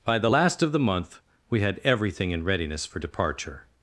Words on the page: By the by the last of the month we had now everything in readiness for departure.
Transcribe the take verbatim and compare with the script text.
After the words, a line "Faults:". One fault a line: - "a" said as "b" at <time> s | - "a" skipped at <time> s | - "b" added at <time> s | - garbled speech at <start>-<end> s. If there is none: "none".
By the last of the month we had everything in readiness for departure.
Faults:
- "by the" skipped at 0.3 s
- "now" skipped at 1.8 s